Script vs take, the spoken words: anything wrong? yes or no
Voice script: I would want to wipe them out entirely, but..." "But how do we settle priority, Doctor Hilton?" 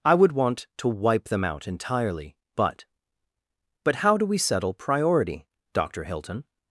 no